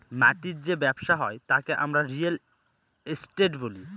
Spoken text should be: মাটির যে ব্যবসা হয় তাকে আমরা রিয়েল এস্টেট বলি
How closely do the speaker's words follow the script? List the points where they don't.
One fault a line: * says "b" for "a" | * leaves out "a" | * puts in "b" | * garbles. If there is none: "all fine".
all fine